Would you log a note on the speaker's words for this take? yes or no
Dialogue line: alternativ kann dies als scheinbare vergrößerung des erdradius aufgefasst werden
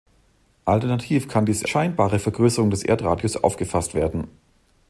yes